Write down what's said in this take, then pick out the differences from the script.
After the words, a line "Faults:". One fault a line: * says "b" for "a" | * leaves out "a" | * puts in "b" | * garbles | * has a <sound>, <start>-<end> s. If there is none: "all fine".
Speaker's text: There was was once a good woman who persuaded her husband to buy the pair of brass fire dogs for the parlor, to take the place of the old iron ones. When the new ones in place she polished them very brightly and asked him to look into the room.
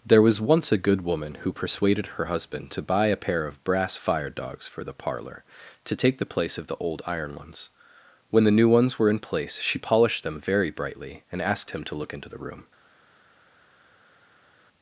There was once a good woman who persuaded her husband to buy a pair of brass fire dogs for the parlor, to take the place of the old iron ones. When the new ones were in place she polished them very brightly and asked him to look into the room.
Faults:
* leaves out "was"
* says "a" for "the"
* puts in "were"